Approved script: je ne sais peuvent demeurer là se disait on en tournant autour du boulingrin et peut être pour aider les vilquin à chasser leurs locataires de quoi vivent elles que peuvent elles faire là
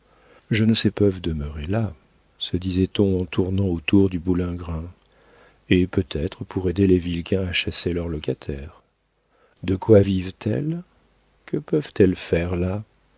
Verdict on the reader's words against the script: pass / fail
pass